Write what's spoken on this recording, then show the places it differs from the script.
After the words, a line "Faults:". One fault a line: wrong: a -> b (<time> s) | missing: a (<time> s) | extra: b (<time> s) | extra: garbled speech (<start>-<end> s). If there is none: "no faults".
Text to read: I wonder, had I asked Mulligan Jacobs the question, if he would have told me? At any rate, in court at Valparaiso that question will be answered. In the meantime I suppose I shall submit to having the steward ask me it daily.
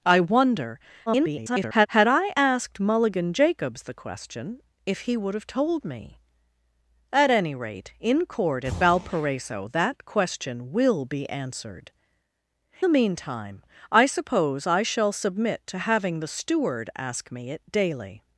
I wonder, [garbled] had I asked Mulligan Jacobs the question, if he would have told me? At any rate, in court at Valparaiso that question will be answered. The meantime I suppose I shall submit to having the steward ask me it daily.
Faults:
extra: garbled speech (1.1-1.9 s)
missing: In (11.9 s)